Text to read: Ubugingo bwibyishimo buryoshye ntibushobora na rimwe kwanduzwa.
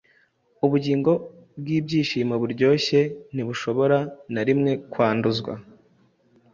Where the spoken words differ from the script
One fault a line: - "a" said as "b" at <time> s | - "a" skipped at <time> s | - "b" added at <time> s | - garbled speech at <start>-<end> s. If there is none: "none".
none